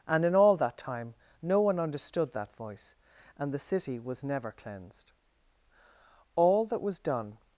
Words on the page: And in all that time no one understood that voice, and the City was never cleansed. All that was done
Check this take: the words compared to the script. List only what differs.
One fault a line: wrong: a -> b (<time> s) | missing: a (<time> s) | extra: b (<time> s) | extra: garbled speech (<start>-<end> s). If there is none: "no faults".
no faults